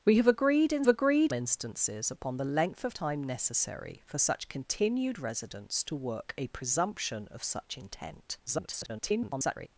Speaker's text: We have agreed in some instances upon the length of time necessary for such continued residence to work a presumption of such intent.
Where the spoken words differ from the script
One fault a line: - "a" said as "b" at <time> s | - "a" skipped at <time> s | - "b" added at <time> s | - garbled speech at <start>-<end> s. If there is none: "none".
- "some" said as "agreed" at 0.9 s
- garbled speech at 8.5-9.7 s